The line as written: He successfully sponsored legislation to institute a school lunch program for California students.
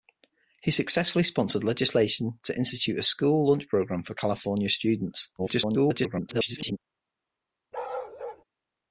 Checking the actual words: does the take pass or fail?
fail